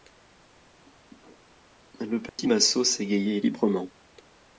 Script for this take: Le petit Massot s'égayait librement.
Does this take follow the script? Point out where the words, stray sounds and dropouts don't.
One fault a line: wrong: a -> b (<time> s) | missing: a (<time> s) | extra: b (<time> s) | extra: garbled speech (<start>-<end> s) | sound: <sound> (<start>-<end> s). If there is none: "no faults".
sound: dropout (2.3-2.4 s)